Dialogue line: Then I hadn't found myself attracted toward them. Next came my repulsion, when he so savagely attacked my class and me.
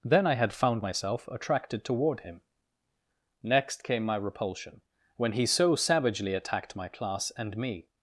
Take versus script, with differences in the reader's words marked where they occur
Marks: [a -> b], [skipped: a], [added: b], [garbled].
Then I [hadn't -> had] found myself attracted toward [them. -> him] Next came my repulsion, when he so savagely attacked my class and me.